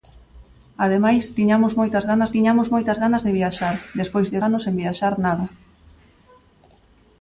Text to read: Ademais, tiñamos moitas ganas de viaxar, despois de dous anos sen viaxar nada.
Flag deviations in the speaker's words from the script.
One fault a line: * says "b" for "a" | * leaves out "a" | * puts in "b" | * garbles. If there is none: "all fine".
* puts in "tiñamos moitas ganas"
* leaves out "dous"